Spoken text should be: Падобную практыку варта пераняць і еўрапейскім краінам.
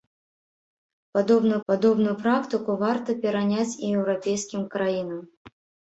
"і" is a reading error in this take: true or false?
false